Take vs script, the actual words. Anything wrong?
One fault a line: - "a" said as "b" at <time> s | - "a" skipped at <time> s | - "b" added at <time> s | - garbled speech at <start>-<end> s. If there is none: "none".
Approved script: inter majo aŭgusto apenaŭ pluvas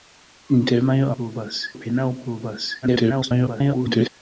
- "aŭgusto" said as "pluvas" at 1.2 s
- garbled speech at 2.8-4.1 s